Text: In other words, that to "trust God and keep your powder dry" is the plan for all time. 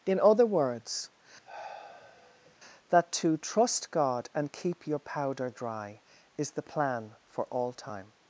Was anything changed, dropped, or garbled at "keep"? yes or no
no